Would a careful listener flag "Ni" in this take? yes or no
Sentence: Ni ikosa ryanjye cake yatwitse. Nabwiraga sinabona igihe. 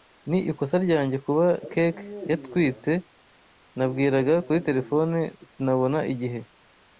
no